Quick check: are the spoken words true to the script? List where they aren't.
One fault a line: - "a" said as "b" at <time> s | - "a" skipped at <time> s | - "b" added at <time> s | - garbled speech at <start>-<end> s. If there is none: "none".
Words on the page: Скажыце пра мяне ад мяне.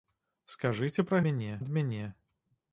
none